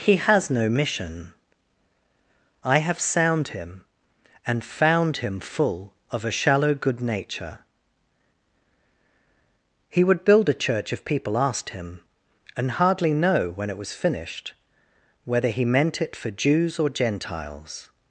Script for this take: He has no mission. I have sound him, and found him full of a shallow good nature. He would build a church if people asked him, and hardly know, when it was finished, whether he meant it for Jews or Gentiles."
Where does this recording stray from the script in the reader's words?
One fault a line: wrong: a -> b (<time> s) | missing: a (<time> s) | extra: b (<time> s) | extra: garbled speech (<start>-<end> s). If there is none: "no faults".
no faults